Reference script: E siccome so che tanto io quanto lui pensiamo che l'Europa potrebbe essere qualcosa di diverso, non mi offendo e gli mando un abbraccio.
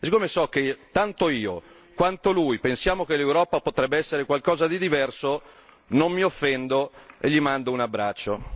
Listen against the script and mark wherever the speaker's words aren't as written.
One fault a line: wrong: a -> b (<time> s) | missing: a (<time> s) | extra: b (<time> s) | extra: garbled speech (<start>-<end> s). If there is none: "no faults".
no faults